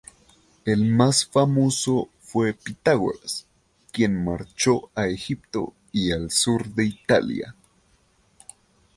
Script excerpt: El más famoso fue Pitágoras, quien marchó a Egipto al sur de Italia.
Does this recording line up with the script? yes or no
no